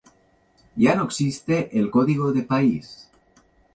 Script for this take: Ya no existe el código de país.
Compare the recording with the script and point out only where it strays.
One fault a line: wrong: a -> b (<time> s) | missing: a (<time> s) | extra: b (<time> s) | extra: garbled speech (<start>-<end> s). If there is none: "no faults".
no faults